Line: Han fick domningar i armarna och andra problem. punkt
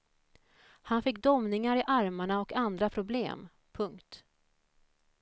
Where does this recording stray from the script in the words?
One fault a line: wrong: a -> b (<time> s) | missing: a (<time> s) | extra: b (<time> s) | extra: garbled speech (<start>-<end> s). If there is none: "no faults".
no faults